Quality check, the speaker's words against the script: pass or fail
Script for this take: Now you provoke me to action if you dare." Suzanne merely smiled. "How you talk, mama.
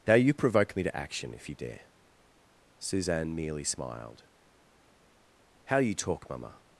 pass